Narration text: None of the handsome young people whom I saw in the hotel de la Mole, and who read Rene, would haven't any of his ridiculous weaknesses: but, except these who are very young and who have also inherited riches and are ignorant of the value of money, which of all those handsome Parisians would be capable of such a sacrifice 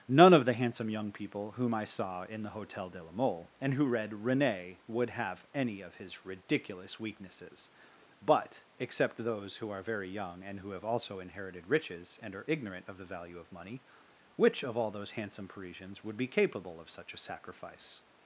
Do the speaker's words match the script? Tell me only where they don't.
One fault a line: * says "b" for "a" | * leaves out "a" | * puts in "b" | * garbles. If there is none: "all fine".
* says "have" for "haven't"
* says "those" for "these"